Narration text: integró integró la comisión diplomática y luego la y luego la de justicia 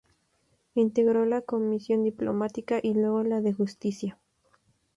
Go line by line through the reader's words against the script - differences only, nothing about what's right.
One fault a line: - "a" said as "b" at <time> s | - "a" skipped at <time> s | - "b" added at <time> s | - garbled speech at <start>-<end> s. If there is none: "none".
- "integró" skipped at 1.3 s
- "y luego la" skipped at 3.4 s